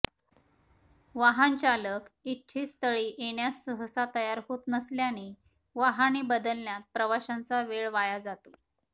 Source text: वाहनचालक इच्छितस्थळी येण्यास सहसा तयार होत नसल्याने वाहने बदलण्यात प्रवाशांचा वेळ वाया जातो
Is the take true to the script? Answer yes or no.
yes